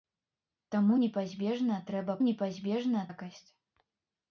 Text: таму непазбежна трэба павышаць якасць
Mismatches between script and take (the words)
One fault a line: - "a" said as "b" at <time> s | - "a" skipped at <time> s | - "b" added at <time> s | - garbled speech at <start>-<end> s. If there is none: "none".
- "павышаць" said as "непазбежна" at 2.2 s